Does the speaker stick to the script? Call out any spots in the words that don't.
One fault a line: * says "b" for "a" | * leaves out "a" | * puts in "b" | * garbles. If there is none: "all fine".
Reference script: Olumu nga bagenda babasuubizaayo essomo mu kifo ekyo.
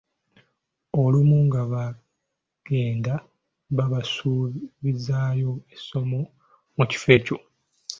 all fine